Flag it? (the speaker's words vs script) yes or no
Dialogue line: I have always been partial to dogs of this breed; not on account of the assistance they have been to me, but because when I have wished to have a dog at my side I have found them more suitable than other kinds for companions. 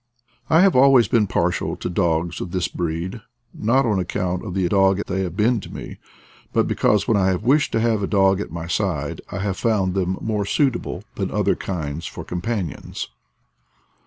yes